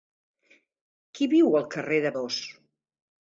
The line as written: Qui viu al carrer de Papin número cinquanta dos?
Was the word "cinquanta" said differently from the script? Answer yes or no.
yes